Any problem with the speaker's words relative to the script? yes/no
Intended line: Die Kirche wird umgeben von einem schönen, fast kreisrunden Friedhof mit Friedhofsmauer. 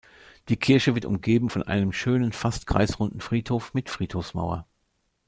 no